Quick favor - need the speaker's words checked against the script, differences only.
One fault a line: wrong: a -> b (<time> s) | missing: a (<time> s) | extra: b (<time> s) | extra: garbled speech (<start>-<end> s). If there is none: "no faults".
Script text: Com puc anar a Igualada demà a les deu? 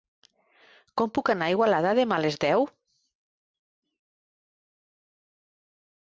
no faults